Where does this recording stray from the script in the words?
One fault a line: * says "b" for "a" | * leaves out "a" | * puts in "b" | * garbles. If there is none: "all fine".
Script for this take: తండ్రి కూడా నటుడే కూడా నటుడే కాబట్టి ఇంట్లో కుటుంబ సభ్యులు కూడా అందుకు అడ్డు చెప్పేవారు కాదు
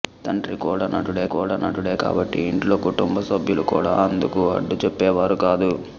all fine